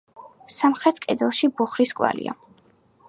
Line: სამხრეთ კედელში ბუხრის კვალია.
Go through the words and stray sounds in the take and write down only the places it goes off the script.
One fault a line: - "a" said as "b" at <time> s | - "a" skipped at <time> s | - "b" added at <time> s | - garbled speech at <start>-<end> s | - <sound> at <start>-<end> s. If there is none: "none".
none